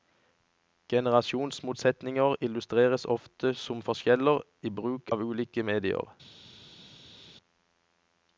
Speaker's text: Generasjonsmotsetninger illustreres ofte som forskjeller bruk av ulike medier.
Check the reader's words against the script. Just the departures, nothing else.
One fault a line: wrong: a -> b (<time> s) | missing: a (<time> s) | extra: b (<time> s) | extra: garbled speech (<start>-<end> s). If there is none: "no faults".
extra: i (4.6 s)